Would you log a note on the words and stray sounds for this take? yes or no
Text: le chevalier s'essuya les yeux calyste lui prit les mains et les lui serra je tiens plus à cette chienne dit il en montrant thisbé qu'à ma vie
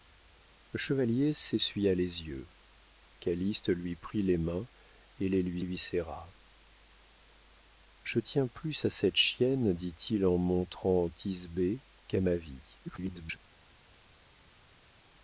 yes